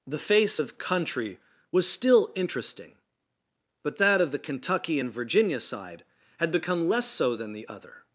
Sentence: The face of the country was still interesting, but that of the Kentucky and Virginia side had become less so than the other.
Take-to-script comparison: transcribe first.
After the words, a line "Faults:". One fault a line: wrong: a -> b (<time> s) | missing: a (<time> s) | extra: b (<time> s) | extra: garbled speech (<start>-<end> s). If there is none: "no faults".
The face of country was still interesting, but that of the Kentucky and Virginia side had become less so than the other.
Faults:
missing: the (0.8 s)